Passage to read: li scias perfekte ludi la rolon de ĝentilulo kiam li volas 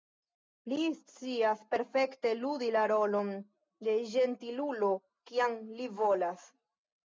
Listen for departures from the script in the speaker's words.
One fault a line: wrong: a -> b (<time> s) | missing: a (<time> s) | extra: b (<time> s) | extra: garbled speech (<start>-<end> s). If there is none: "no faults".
no faults